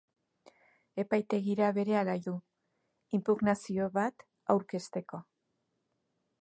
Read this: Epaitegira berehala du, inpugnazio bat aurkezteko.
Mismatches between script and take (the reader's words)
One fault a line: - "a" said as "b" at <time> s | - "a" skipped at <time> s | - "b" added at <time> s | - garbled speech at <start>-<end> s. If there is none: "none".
none